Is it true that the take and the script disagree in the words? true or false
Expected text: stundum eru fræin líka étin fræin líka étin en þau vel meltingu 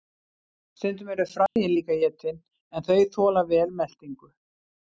true